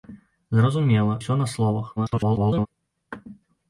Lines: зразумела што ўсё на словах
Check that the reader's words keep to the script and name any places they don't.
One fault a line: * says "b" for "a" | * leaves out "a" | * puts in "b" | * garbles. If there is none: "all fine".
* leaves out "што"
* garbles